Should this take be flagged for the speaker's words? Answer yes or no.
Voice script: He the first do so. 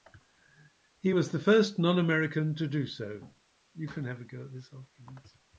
yes